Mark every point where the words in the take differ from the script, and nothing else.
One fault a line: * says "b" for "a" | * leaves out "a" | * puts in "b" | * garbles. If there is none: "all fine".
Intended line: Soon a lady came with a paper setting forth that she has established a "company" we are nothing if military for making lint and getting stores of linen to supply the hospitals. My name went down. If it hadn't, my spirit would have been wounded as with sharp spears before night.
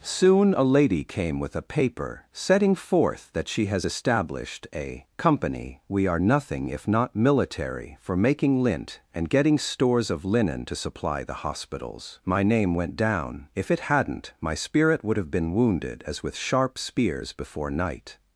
* puts in "not"